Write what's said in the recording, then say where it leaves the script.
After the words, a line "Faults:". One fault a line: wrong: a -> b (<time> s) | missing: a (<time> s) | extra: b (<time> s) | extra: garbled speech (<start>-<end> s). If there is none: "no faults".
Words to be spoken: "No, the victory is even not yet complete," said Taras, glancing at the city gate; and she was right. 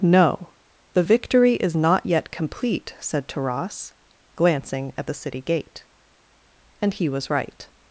"No, the victory is not yet complete," said Taras, glancing at the city gate; and he was right.
Faults:
missing: even (1.8 s)
wrong: she -> he (6.9 s)